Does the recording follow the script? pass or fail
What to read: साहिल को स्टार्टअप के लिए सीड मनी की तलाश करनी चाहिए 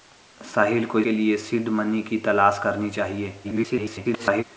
fail